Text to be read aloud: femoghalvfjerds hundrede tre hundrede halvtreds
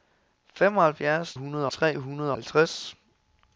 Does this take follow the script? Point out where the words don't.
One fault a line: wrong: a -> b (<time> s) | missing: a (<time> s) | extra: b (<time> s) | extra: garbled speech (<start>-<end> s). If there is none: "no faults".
no faults